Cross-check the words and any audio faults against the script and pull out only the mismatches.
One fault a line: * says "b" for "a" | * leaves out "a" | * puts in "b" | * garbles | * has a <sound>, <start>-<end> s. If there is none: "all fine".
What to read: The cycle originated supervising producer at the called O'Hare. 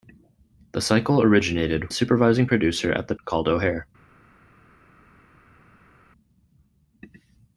all fine